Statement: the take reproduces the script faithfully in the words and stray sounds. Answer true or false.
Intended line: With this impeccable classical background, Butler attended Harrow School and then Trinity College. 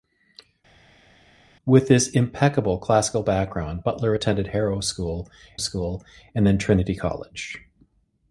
false